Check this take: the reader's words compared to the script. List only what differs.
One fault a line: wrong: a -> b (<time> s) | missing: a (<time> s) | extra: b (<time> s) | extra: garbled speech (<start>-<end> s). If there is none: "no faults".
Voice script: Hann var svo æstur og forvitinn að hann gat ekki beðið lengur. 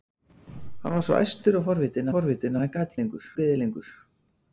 extra: forvitinn (2.1 s)
wrong: ekki -> lengur (3.0 s)